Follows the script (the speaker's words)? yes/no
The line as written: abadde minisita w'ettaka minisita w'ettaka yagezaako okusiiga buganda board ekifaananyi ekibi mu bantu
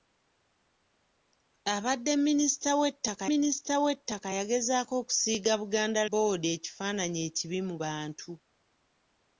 yes